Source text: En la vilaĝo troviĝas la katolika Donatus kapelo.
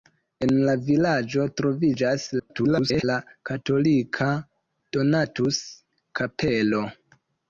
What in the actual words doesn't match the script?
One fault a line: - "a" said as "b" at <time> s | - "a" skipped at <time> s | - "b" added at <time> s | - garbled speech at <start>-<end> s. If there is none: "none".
- garbled speech at 2.4-3.0 s